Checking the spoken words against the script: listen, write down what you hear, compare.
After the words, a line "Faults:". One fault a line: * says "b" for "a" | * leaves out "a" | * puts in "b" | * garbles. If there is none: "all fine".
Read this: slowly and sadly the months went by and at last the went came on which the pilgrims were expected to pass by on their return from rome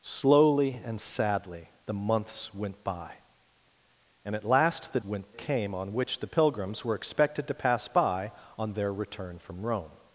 slowly and sadly the months went by and at last the went came on which the pilgrims were expected to pass by on their return from rome
Faults:
all fine